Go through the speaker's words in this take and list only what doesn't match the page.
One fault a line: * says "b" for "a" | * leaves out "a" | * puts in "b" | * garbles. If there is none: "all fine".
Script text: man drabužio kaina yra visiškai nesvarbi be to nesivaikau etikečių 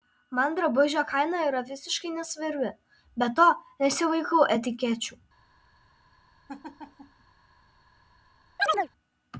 all fine